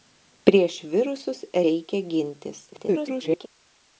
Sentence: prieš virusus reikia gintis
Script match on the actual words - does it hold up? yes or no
no